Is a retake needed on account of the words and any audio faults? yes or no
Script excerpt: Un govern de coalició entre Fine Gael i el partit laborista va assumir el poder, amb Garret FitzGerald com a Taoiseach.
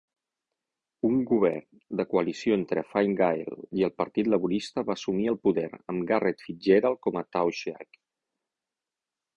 no